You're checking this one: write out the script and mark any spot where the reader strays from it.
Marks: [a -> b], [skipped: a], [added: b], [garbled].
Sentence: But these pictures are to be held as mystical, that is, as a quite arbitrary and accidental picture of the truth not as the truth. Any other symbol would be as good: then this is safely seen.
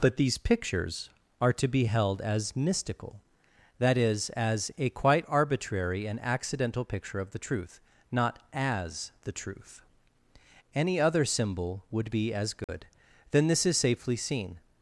But these pictures are to be held as mystical, that is, as a quite arbitrary and accidental picture of the truth not as the truth. Any other symbol would be as good: then this is safely seen.